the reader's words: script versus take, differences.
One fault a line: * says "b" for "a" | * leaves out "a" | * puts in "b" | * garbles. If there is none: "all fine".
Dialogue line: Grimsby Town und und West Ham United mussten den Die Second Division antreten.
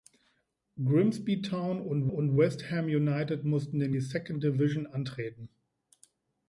all fine